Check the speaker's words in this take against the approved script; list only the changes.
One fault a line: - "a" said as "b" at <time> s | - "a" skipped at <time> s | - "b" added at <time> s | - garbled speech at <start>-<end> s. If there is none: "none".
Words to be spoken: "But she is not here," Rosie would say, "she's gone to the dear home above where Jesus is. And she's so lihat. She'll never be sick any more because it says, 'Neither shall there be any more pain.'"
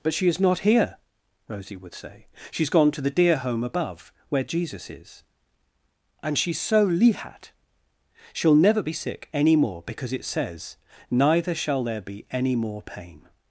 none